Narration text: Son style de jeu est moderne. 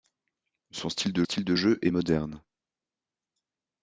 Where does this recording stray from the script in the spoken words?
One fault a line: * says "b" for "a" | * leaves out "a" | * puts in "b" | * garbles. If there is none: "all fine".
* puts in "style de"